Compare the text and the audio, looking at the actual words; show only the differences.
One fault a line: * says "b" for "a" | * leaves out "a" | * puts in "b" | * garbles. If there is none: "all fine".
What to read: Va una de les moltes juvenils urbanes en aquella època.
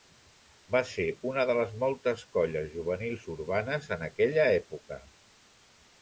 * puts in "ser"
* puts in "colles"